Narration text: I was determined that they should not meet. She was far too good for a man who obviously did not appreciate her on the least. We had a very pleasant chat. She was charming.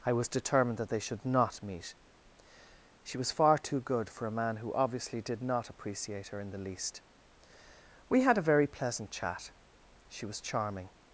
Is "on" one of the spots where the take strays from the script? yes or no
yes